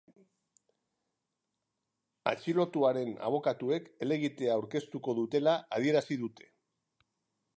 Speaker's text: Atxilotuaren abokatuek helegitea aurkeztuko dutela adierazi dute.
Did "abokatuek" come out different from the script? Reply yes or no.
no